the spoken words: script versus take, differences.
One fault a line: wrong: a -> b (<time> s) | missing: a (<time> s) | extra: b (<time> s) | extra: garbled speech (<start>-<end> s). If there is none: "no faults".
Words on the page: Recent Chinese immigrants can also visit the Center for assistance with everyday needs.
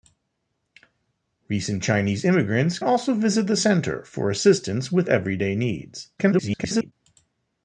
missing: can (2.8 s)
extra: garbled speech (6.2-6.9 s)